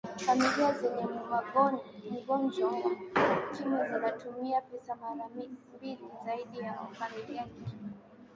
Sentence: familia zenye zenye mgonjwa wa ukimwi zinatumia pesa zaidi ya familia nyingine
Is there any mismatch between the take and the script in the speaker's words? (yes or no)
yes